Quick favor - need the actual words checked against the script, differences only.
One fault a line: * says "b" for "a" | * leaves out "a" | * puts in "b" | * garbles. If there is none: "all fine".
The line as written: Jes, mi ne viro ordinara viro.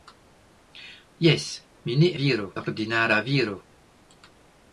all fine